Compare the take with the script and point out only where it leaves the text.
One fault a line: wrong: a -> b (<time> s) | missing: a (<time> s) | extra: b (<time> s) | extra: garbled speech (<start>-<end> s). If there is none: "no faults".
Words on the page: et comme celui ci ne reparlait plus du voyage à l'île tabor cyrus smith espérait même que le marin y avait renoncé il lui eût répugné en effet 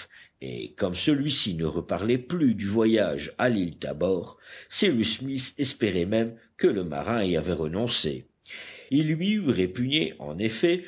no faults